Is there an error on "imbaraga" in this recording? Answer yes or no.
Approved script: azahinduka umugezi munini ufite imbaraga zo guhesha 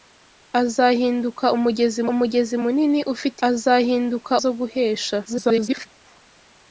yes